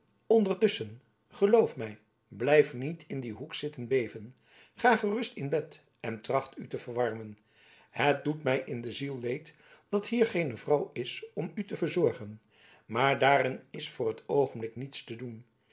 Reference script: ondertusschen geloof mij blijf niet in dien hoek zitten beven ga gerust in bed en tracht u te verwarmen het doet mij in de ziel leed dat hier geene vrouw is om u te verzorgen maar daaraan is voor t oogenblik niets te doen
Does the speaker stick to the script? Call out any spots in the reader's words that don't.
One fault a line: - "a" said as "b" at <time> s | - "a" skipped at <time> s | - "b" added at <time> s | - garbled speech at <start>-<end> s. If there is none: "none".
none